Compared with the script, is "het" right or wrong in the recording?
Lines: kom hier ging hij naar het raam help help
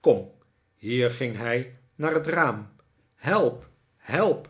right